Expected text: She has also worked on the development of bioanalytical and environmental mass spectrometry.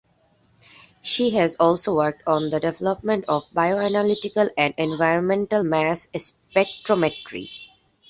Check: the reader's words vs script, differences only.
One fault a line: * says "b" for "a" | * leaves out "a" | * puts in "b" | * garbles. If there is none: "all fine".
all fine